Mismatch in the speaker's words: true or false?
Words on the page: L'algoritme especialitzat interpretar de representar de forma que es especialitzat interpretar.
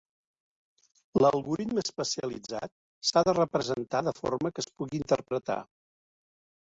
true